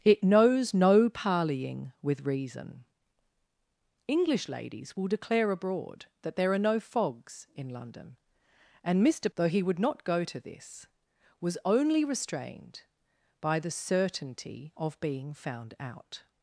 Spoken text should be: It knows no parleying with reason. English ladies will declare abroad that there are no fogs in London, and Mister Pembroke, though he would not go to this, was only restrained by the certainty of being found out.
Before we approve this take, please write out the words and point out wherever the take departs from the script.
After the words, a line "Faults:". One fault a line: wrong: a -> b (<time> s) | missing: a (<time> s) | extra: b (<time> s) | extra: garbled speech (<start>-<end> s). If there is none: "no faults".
It knows no parleying with reason. English ladies will declare abroad that there are no fogs in London, and Mister Though he would not go to this, was only restrained by the certainty of being found out.
Faults:
missing: Pembroke (9.3 s)